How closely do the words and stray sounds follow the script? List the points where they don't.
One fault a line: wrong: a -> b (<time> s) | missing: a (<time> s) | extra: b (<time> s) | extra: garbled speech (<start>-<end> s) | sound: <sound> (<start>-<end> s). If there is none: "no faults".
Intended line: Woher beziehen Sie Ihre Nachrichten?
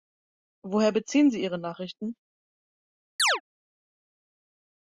sound: chirp (3.2-3.4 s)